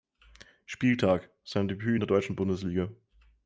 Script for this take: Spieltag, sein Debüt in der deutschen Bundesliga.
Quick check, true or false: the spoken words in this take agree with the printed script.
true